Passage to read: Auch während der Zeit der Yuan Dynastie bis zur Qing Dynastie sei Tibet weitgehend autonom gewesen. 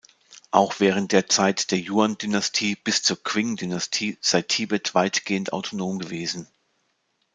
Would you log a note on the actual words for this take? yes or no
no